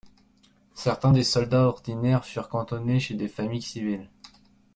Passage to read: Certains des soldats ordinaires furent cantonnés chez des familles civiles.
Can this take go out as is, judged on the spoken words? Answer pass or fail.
pass